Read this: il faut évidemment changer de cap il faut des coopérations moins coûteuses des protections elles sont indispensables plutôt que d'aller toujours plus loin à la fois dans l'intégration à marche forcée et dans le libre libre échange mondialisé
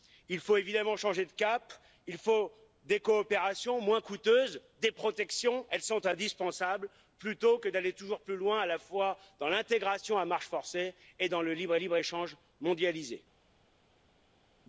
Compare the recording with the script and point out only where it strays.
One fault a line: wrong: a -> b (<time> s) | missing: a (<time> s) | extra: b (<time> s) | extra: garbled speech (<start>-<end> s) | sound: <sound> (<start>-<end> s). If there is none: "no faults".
no faults